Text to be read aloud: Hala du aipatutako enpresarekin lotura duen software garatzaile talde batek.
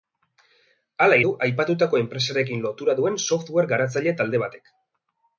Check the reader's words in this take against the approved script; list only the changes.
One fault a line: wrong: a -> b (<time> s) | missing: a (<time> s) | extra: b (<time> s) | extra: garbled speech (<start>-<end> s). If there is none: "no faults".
no faults